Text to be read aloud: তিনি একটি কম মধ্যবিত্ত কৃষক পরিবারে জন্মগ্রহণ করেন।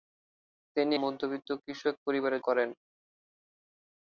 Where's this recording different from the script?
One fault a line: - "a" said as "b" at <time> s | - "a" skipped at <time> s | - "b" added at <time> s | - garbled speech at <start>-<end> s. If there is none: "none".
- "একটি কম" skipped at 0.9 s
- "জন্মগ্রহণ" skipped at 2.4 s